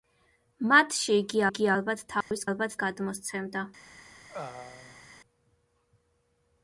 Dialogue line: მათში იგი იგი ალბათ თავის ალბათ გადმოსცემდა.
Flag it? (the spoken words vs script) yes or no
no